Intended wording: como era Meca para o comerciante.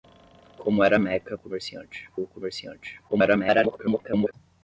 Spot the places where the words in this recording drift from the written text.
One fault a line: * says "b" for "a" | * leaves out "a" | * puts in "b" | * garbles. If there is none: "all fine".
* says "comerciante" for "para"
* garbles